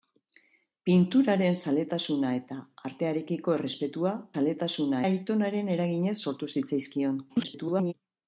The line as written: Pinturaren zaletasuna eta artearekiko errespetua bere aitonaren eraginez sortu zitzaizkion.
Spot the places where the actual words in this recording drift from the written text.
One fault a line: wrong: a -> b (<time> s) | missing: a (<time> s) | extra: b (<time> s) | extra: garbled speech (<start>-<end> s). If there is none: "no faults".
wrong: bere -> zaletasuna (4.3 s)
extra: garbled speech (7.3-7.9 s)